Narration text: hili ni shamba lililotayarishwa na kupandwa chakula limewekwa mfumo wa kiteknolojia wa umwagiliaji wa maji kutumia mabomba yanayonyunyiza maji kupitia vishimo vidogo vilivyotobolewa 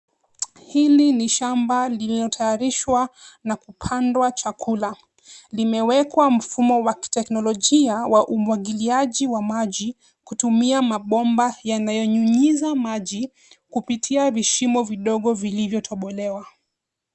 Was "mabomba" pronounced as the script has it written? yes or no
yes